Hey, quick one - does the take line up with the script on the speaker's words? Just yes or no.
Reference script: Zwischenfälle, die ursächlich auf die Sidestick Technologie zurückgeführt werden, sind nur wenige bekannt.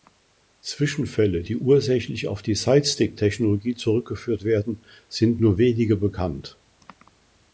yes